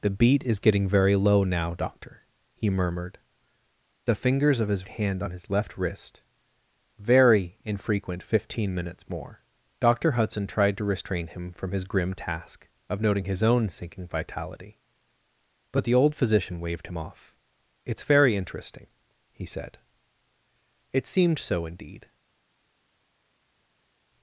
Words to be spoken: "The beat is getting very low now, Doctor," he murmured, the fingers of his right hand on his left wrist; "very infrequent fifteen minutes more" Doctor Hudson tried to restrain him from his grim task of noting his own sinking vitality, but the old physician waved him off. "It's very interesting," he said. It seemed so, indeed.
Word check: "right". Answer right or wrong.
wrong